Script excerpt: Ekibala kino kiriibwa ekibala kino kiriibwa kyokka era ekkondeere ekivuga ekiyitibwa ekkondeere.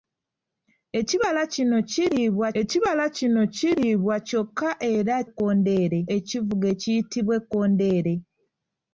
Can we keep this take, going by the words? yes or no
yes